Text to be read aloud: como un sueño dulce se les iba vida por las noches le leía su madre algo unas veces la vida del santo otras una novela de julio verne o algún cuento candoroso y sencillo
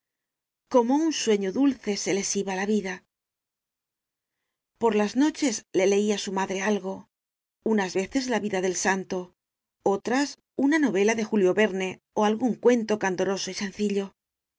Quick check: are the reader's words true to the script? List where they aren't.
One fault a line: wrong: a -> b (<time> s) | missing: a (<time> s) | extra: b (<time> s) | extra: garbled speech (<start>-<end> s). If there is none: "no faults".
extra: la (2.5 s)